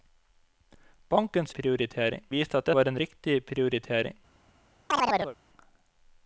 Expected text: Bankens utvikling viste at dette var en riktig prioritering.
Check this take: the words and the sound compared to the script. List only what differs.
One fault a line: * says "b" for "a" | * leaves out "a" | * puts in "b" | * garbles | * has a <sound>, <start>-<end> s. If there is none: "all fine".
* says "prioritering" for "utvikling"
* leaves out "dette"
* has a chirp, 4.9-5.4 s